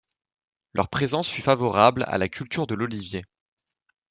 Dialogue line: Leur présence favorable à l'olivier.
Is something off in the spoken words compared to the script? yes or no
yes